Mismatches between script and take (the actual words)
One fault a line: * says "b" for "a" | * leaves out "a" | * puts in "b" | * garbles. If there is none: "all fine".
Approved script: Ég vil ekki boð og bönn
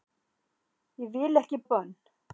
* leaves out "boð"